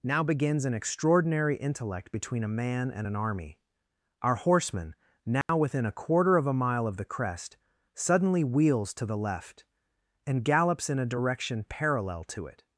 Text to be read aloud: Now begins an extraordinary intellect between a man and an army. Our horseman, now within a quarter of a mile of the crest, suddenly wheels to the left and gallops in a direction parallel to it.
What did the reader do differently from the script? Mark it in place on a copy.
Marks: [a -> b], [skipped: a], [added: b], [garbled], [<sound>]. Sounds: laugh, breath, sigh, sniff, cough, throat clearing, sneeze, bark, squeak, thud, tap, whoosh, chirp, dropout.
Now begins an extraordinary intellect between a man and an army. Our horseman, now [dropout] within a quarter of a mile of the crest, suddenly wheels to the left and gallops in a direction parallel to it.